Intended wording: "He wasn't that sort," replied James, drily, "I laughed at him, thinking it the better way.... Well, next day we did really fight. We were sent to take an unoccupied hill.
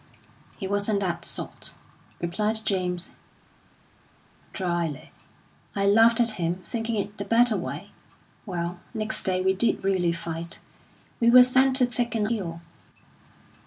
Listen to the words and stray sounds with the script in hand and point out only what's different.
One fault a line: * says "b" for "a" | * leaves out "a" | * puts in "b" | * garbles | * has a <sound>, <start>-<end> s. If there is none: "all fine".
* leaves out "unoccupied"